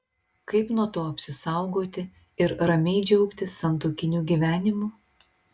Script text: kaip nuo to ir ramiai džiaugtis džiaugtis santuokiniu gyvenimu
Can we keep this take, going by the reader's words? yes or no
no